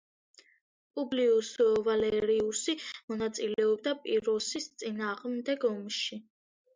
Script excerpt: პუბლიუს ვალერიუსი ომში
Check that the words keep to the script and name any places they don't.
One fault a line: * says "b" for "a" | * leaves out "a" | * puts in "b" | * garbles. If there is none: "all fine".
* puts in "მონაწილეობდა პიროსის წინააღმდეგ"